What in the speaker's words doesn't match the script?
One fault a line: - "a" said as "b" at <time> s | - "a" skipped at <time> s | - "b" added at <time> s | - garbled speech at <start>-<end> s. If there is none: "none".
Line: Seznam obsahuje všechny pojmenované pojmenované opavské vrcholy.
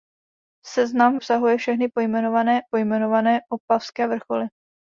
none